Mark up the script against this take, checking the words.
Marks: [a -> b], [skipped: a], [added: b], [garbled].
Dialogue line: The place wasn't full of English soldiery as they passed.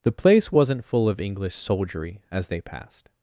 The place wasn't full of English soldiery as they passed.